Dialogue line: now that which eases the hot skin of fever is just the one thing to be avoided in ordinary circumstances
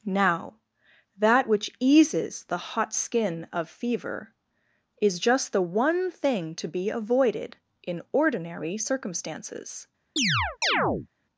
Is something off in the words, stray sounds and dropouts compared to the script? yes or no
yes